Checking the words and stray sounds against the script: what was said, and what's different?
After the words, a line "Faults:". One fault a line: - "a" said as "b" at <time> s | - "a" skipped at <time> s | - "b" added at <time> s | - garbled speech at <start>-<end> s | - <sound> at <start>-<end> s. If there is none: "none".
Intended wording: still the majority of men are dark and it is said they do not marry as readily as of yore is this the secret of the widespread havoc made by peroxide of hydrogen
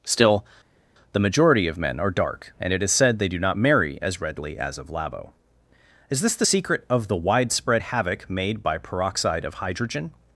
still the majority of men are dark and it is said they do not marry as readily as of labo is this the secret of the widespread havoc made by peroxide of hydrogen
Faults:
- "yore" said as "labo" at 4.9 s